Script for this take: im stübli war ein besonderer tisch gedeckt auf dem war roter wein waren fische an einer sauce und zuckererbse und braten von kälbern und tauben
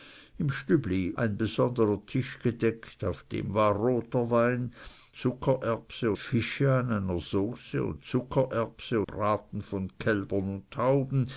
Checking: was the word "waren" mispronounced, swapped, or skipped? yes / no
yes